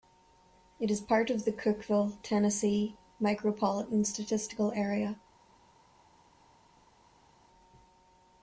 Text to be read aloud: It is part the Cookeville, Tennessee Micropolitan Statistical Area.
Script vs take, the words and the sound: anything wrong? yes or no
yes